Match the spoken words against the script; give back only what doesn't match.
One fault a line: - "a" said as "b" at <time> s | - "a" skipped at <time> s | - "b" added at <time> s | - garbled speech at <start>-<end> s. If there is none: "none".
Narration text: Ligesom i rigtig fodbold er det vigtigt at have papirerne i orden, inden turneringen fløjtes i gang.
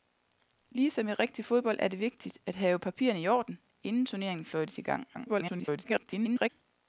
- garbled speech at 5.1-6.5 s